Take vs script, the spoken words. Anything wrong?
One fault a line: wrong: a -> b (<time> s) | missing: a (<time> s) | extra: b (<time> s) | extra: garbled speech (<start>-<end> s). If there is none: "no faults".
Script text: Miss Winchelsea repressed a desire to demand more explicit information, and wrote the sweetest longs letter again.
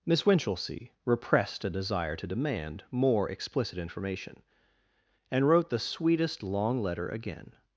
wrong: longs -> long (6.4 s)